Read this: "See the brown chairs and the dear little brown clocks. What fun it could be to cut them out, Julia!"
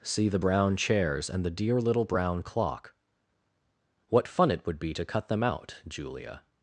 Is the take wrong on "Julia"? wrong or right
right